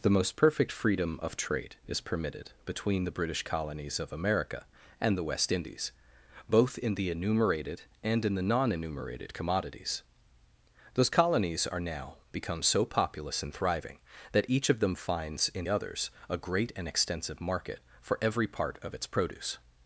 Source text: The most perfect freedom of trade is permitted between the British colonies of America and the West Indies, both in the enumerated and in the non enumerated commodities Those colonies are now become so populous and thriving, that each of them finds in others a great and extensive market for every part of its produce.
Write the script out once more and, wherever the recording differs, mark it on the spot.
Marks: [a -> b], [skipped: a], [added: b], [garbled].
The most perfect freedom of trade is permitted between the British colonies of America and the West Indies, both in the enumerated and in the non enumerated commodities Those colonies are now become so populous and thriving, that each of them finds in others a great and extensive market for every part of its produce.